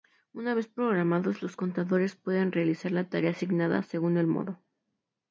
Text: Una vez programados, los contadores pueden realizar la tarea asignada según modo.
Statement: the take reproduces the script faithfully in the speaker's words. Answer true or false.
false